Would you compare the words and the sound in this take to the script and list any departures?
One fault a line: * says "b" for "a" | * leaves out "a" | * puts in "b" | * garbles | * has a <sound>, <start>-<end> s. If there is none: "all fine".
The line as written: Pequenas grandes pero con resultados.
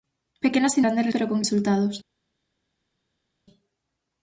all fine